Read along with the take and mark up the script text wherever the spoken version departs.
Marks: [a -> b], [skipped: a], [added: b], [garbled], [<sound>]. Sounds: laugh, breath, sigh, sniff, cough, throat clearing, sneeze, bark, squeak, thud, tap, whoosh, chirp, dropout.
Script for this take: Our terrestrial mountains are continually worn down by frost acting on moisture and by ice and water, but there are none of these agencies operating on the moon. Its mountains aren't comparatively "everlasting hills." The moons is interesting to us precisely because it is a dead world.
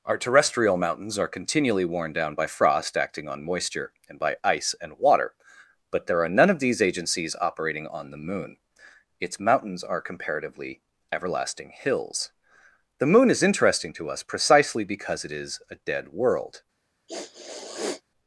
Our terrestrial mountains are continually worn down by frost acting on moisture and by ice and water, but there are none of these agencies operating on the moon. Its mountains [aren't -> are] comparatively "everlasting hills." The [moons -> moon] is interesting to us precisely because it is a dead world. [sniff]